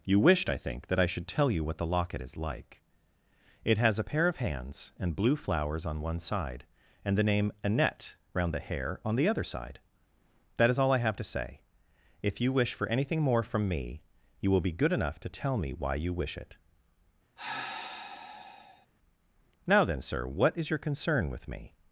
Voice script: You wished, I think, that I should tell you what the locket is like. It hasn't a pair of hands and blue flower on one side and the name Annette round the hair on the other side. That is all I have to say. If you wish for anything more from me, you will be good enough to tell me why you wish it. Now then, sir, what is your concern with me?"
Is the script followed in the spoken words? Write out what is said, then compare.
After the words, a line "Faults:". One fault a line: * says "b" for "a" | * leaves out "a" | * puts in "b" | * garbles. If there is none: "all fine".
You wished, I think, that I should tell you what the locket is like. It has a pair of hands and blue flowers on one side and the name Annette round the hair on the other side. That is all I have to say. If you wish for anything more from me, you will be good enough to tell me why you wish it. Now then, sir, what is your concern with me?"
Faults:
* says "has" for "hasn't"
* says "flowers" for "flower"